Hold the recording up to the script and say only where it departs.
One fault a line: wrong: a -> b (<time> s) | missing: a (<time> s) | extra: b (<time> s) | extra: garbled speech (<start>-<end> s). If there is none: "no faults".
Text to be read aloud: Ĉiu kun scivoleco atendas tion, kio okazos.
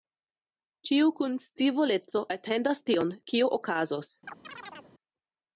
no faults